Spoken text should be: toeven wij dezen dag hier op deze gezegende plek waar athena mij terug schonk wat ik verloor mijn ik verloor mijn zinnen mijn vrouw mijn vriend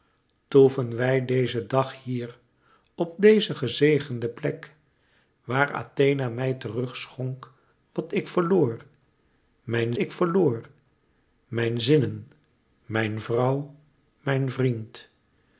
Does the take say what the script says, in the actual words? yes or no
yes